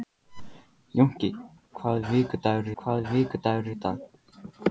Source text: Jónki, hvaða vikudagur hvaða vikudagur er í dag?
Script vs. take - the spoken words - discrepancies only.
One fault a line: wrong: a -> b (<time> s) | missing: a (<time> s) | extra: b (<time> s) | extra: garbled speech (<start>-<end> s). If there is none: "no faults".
no faults